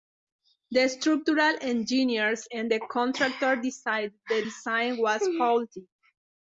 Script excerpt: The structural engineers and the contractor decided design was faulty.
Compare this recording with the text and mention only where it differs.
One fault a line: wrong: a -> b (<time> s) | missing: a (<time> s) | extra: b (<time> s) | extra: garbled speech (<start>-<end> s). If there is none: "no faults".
extra: the (4.3 s)